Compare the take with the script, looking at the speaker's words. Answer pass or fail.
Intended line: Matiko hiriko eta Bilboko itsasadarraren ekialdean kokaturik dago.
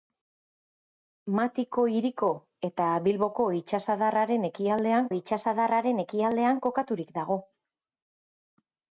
fail